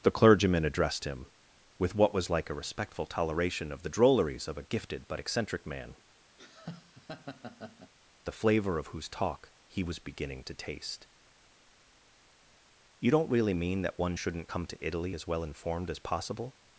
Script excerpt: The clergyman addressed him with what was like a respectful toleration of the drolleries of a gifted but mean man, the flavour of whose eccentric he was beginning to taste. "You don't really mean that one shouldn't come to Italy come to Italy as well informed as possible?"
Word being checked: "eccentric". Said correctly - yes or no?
no